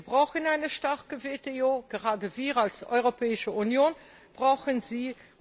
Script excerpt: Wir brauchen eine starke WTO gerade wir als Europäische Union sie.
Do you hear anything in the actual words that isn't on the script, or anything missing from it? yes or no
yes